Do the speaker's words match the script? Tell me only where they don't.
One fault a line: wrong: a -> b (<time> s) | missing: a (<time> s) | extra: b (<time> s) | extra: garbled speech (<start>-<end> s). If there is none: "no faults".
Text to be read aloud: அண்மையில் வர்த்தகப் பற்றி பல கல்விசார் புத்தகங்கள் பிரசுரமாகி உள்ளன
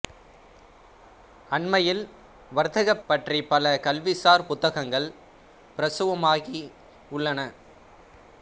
no faults